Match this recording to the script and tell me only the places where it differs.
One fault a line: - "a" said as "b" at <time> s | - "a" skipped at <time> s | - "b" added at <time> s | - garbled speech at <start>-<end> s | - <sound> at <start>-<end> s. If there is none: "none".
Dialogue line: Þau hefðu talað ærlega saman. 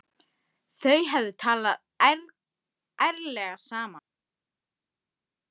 none